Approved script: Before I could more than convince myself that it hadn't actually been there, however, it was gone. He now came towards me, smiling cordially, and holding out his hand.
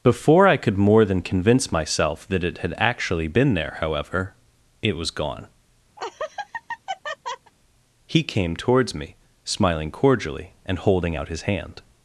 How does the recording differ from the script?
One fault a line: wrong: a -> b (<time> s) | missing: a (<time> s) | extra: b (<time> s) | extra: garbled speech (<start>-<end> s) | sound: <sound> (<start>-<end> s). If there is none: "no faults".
wrong: hadn't -> had (2.6 s)
sound: laugh (6.0-7.5 s)
missing: now (8.2 s)